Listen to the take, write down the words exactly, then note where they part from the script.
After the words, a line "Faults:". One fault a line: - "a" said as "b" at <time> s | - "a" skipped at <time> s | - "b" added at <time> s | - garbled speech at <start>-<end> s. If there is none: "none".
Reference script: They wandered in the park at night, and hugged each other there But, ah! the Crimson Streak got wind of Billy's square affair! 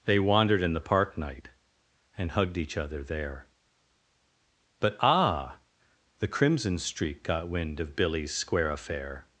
They wandered in the park night, and hugged each other there But, ah! the Crimson Streak got wind of Billy's square affair!
Faults:
- "at" skipped at 1.2 s